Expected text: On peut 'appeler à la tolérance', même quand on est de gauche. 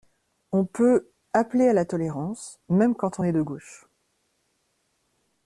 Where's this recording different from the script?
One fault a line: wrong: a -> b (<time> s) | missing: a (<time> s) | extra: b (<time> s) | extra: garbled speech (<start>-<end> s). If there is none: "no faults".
no faults